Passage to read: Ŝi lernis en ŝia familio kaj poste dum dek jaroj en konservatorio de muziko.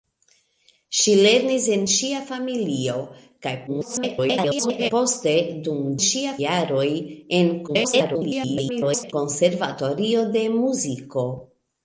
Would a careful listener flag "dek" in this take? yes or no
yes